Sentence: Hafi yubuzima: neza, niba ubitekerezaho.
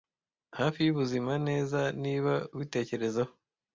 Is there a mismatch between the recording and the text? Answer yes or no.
no